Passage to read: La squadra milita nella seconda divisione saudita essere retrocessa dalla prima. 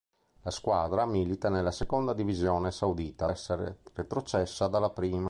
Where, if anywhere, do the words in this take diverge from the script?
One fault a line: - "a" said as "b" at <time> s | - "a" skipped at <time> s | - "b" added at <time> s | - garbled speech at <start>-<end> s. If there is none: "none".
none